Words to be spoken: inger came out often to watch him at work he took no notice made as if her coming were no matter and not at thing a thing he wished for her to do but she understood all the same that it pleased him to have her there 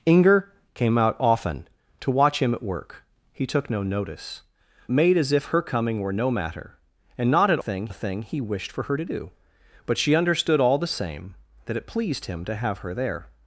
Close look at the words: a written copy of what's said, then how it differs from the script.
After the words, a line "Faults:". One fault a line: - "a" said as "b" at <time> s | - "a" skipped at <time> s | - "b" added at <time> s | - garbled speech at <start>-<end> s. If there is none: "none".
inger came out often to watch him at work he took no notice made as if her coming were no matter and not at thing a thing he wished for her to do but she understood all the same that it pleased him to have her there
Faults:
none